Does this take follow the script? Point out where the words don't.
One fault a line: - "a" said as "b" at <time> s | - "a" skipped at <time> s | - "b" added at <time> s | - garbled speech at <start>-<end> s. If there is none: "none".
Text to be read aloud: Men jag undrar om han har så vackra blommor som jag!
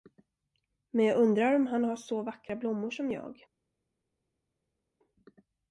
none